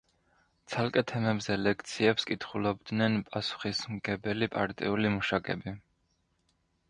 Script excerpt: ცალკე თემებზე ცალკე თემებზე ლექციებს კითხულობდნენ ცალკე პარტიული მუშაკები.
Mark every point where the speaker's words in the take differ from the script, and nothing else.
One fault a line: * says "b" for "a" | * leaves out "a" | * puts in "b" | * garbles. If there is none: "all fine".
* leaves out "ცალკე თემებზე"
* says "პასუხისმგებელი" for "ცალკე"